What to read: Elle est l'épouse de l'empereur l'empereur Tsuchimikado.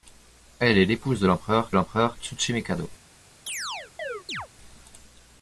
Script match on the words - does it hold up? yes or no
yes